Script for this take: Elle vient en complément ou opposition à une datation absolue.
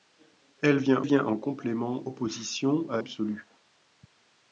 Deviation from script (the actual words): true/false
true